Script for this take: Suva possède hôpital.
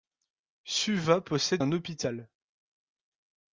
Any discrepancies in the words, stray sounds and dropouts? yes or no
yes